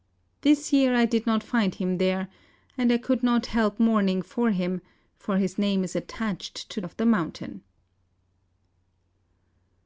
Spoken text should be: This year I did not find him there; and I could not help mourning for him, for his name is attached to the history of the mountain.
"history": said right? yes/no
no